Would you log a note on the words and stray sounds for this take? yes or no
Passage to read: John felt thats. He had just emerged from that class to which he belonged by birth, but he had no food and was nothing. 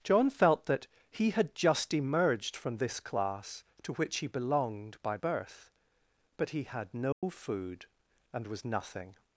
yes